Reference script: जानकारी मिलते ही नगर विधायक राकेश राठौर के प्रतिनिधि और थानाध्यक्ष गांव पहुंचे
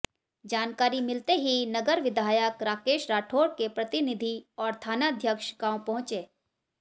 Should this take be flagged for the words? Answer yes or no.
no